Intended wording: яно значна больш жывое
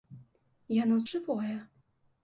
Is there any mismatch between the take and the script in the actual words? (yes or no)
yes